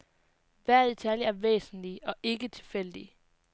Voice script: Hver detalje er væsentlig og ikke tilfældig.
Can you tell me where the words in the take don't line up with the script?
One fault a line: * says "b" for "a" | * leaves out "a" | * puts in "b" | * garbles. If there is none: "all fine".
all fine